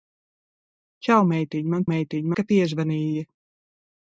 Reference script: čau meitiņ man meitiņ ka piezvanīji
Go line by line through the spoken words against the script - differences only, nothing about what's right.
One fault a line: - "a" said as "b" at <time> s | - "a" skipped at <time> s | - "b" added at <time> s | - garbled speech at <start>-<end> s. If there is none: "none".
none